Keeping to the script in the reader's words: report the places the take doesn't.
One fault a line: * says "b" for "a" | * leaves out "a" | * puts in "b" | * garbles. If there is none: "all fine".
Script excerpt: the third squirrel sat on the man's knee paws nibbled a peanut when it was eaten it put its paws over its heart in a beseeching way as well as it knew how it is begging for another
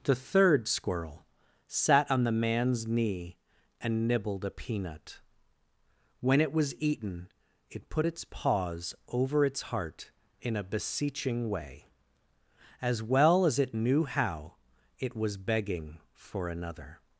* says "and" for "paws"
* says "was" for "is"